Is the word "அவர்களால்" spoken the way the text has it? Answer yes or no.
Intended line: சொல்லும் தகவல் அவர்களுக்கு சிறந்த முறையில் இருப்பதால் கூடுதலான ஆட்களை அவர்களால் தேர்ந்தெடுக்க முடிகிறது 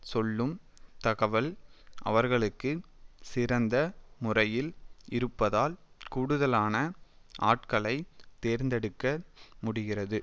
no